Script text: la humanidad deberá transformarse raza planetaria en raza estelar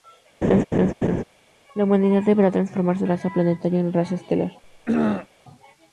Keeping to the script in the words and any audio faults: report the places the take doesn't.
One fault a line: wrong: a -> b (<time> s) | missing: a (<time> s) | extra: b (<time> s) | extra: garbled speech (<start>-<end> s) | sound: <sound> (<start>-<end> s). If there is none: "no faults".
sound: laugh (0.4-1.2 s)
sound: throat clearing (4.6-5.3 s)